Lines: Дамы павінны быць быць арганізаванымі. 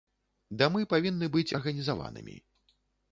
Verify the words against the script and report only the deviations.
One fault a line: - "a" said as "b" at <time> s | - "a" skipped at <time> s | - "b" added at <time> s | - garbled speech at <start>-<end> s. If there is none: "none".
- "быць" skipped at 1.6 s